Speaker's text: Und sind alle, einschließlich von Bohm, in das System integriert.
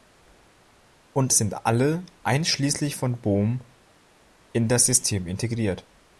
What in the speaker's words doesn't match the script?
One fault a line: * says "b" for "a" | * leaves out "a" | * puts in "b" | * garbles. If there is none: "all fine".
all fine